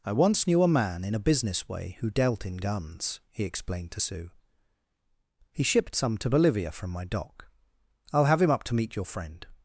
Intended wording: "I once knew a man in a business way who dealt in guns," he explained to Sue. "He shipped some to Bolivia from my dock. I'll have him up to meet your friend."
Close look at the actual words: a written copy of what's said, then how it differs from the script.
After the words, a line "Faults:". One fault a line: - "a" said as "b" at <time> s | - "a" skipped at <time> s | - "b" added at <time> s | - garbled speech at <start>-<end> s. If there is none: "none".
"I once knew a man in a business way who dealt in guns," he explained to Sue. "He shipped some to Bolivia from my dock. I'll have him up to meet your friend."
Faults:
none